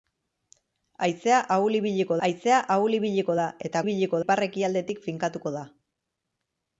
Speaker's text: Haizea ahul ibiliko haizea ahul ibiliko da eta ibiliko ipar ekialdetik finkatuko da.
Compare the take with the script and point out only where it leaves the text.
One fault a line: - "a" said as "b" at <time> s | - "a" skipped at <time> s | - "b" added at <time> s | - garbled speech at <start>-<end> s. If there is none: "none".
none